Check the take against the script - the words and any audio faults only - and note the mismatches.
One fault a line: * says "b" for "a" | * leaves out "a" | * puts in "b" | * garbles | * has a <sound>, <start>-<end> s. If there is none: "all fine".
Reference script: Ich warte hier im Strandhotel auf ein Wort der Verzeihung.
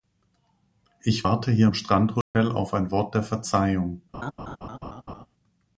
* has a dropout, 2.2-2.3 s
* has a laugh, 4.1-5.3 s